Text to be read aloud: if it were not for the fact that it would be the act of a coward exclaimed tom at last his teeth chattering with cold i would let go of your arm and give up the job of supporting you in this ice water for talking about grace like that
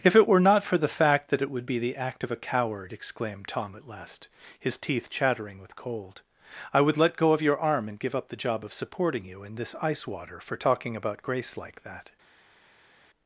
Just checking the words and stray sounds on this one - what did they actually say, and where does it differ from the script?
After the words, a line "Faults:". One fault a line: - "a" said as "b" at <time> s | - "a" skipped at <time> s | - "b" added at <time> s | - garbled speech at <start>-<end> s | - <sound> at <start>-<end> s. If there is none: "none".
if it were not for the fact that it would be the act of a coward exclaimed tom at last his teeth chattering with cold i would let go of your arm and give up the job of supporting you in this ice water for talking about grace like that
Faults:
none